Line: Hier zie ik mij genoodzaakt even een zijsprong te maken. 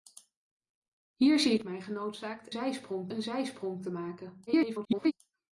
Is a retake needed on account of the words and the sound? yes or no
yes